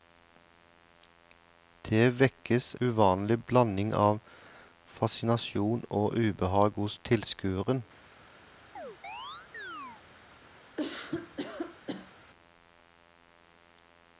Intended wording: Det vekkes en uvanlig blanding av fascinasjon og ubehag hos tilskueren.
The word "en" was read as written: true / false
false